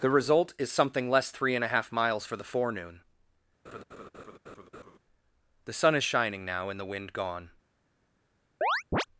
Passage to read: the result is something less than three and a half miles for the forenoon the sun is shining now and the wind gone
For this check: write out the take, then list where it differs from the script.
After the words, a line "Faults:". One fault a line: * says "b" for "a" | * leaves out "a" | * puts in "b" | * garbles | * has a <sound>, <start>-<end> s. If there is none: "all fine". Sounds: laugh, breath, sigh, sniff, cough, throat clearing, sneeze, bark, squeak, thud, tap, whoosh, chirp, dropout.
the result is something less three and a half miles for the forenoon the sun is shining now and the wind gone
Faults:
* leaves out "than"
* has a laugh, 3.6-5.0 s
* has a chirp, 8.6-9.1 s